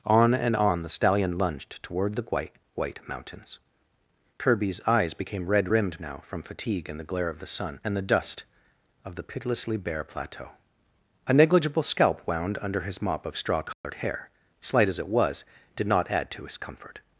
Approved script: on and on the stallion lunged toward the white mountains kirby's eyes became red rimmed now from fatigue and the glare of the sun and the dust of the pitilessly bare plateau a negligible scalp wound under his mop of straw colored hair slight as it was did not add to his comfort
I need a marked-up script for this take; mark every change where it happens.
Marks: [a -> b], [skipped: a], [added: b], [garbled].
on and on the stallion lunged toward the white [added: white] mountains kirby's eyes became red rimmed now from fatigue and the glare of the sun and the dust of the pitilessly bare plateau a negligible scalp wound under his mop of straw colored hair slight as it was did not add to his comfort